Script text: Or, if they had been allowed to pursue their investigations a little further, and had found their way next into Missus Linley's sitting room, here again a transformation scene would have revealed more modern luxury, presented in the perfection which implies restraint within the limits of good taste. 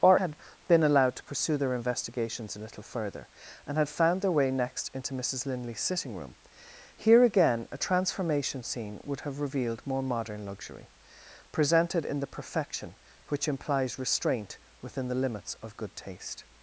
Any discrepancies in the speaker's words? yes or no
yes